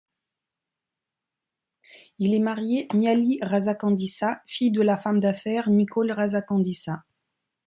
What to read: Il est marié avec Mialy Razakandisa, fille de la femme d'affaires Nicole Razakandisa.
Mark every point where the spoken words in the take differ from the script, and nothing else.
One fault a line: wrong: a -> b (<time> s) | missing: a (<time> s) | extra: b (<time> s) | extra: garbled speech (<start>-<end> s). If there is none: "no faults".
missing: avec (2.9 s)